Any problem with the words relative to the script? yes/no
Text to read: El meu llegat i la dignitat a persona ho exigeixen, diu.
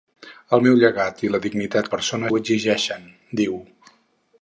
no